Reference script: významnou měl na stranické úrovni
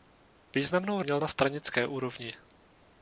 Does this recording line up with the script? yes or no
yes